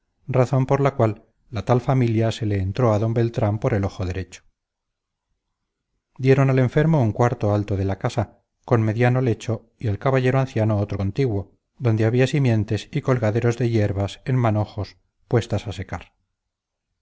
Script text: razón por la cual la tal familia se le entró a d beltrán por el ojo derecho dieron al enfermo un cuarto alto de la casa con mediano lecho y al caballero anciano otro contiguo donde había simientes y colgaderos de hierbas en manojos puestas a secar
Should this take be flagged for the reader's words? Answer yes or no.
no